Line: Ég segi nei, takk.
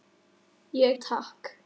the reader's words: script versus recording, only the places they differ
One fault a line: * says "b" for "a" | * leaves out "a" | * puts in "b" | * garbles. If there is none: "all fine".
* leaves out "segi nei"